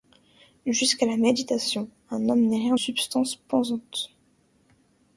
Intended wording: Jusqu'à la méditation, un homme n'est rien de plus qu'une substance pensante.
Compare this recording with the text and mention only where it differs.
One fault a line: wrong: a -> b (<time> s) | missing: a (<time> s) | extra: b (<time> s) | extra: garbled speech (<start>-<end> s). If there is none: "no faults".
missing: de plus qu'une (2.8 s)